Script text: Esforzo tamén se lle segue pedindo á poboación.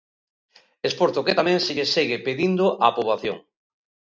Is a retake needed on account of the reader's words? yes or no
yes